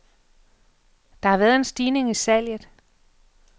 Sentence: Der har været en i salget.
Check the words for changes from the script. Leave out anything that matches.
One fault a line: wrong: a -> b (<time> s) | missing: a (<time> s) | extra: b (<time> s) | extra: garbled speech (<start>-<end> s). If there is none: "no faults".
extra: stigning (1.6 s)